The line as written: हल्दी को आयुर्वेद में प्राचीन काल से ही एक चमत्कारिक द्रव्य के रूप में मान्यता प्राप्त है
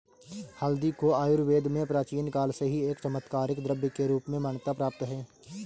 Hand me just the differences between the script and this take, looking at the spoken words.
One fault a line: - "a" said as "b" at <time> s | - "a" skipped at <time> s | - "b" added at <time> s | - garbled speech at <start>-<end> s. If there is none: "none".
none